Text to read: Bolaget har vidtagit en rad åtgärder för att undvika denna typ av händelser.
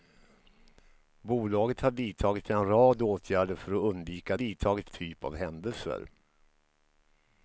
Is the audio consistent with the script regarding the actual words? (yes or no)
no